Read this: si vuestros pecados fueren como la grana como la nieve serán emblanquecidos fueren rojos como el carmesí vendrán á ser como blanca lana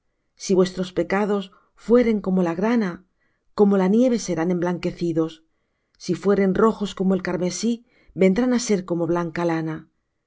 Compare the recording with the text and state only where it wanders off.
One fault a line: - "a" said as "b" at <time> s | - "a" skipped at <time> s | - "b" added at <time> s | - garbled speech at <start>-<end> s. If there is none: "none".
- "si" added at 6.0 s